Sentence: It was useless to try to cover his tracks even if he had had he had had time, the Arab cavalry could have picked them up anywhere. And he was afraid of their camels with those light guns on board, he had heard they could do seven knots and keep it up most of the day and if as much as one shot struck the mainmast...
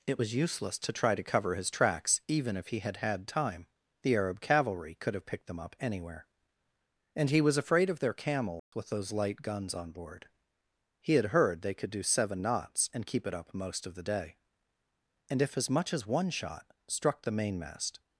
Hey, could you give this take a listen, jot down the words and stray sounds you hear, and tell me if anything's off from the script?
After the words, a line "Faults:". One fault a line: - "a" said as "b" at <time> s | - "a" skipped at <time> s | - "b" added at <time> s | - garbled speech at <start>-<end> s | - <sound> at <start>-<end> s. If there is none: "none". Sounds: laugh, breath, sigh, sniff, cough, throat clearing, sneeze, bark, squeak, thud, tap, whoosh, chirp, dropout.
It was useless to try to cover his tracks even if he had had time, the Arab cavalry could have picked them up anywhere. And he was afraid of their camels with those light guns on board, he had heard they could do seven knots and keep it up most of the day and if as much as one shot struck the mainmast...
Faults:
- "he had had" skipped at 3.3 s
- dropout at 8.6-8.7 s